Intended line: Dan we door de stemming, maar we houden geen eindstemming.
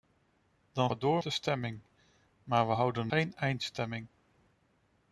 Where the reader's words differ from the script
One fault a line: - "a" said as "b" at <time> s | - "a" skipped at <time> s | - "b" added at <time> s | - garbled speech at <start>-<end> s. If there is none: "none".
none